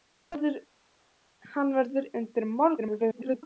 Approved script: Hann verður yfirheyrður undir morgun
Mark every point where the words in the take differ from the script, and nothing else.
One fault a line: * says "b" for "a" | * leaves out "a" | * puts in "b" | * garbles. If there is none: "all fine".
* leaves out "yfirheyrður"
* garbles